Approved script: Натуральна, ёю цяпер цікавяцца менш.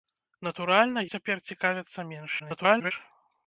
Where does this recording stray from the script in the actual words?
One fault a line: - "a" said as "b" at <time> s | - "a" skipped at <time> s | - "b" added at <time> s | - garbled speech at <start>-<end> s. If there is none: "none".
- "ёю" skipped at 1.0 s
- garbled speech at 2.4-2.9 s